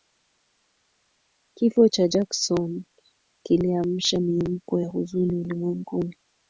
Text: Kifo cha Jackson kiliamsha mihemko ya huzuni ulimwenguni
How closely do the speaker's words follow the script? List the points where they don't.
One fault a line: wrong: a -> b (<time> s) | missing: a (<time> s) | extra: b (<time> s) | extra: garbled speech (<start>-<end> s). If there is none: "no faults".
no faults